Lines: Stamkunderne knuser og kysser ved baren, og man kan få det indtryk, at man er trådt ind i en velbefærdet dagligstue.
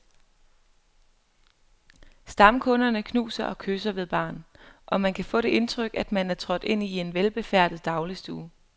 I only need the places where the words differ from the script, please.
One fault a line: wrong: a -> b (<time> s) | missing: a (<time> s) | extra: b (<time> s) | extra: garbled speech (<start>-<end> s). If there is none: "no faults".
no faults